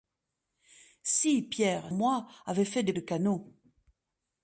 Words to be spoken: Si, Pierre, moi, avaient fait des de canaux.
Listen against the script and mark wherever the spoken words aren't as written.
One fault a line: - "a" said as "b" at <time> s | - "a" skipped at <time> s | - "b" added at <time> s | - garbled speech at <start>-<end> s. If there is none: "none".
none